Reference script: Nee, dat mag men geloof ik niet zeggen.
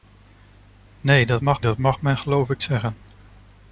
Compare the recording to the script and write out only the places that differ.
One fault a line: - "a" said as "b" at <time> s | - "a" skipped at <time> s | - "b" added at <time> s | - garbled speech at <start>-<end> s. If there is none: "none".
- "dat mag" added at 1.6 s
- "niet" skipped at 2.6 s